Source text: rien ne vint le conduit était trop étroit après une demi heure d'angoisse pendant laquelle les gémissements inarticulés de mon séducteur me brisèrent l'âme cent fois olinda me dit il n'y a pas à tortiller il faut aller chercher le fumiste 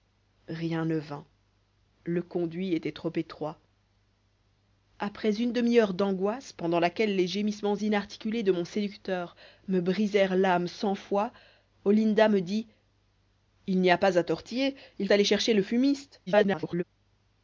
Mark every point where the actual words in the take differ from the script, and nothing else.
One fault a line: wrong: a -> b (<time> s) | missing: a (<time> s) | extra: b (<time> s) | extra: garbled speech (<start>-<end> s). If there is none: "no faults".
missing: faut (15.1 s)
extra: garbled speech (16.3-16.8 s)